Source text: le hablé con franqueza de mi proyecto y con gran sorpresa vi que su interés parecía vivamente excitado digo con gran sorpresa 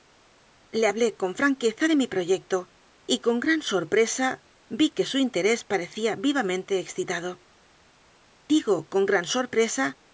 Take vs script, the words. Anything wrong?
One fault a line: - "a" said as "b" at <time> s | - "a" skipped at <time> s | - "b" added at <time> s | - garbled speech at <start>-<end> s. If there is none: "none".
none